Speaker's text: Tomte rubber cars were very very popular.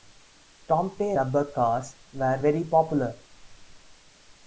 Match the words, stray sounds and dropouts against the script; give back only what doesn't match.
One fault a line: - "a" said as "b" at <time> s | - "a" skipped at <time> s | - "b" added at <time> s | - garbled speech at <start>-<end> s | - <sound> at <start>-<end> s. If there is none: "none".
- "very" skipped at 2.6 s